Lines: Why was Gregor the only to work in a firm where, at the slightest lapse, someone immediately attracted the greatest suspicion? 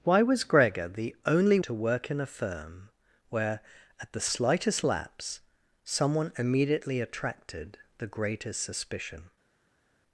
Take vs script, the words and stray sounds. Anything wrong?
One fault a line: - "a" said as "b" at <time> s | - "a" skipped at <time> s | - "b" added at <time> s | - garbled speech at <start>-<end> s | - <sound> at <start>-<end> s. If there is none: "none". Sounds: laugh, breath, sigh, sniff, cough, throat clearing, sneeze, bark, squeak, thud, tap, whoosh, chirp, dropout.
none